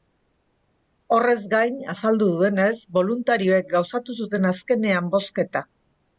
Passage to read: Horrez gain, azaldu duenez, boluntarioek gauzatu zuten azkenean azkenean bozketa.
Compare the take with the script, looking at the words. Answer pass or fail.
fail